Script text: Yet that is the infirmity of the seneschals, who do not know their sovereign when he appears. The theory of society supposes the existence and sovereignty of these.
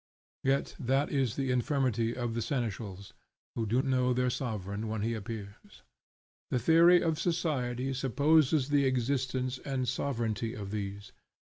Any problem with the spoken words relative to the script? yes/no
yes